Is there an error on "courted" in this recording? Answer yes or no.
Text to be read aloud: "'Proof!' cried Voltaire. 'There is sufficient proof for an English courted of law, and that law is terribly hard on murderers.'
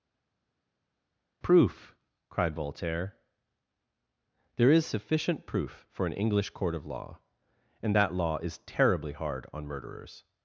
yes